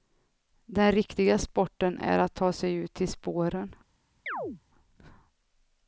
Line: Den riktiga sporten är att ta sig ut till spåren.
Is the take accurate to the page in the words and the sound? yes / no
no